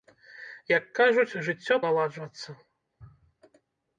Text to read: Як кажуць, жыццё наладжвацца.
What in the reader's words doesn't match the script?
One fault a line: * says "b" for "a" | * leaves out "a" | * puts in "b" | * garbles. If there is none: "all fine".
all fine